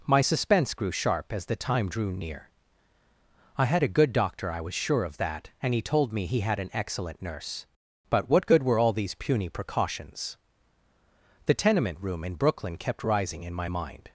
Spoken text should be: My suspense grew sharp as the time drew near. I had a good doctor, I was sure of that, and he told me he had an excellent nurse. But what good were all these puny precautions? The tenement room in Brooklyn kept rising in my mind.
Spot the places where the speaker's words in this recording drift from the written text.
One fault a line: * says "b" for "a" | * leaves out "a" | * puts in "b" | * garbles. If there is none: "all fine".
all fine